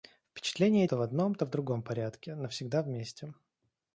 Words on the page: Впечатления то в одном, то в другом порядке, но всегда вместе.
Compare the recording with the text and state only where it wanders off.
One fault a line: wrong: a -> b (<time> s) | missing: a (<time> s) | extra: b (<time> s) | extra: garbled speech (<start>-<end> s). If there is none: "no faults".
no faults